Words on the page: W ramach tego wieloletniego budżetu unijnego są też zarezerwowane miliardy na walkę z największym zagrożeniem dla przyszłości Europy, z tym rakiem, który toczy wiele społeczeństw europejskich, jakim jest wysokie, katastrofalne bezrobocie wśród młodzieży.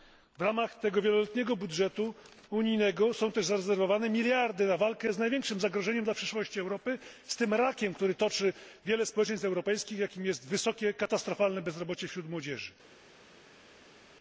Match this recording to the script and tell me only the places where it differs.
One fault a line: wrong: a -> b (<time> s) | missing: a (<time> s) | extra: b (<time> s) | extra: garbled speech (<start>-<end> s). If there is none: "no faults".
no faults